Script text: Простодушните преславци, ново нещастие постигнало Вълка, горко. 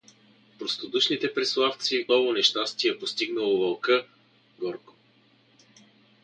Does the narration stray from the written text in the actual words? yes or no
no